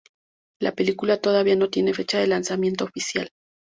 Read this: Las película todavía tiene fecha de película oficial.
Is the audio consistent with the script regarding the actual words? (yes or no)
no